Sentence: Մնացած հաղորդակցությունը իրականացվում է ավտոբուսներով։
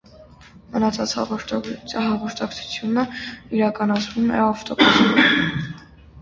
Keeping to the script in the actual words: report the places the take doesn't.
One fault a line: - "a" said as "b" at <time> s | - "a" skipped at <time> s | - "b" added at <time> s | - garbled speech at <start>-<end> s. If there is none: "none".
none